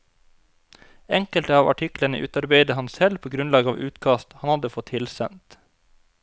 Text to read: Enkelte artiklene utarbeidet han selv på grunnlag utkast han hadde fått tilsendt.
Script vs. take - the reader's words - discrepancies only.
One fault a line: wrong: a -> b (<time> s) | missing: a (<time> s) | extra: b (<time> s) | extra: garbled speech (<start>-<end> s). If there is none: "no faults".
extra: av (1.6 s)
extra: av (3.7 s)